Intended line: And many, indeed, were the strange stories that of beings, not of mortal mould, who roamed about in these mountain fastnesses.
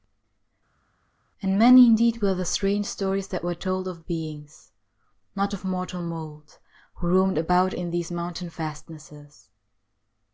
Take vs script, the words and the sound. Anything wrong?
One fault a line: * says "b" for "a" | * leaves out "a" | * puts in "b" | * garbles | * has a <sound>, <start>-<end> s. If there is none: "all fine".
* puts in "were told"